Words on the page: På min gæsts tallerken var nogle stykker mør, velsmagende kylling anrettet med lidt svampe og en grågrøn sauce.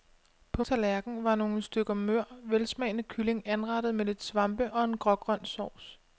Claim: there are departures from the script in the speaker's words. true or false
true